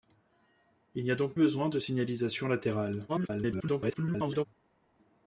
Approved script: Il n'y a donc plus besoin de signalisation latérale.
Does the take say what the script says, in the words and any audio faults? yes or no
no